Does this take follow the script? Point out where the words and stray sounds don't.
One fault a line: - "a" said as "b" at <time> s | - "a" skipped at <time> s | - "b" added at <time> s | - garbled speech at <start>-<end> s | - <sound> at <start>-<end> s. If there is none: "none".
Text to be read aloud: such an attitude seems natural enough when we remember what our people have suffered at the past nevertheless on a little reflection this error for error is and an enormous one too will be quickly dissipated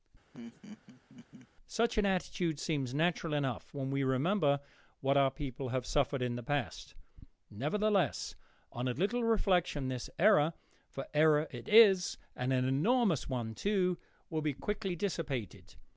- laugh at 0.3-1.5 s
- "at" said as "in" at 6.2 s
- "it" added at 11.5 s